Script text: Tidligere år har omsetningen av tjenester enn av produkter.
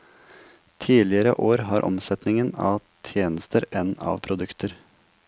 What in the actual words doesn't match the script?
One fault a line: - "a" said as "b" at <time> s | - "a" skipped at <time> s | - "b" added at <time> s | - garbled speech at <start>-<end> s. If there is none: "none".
none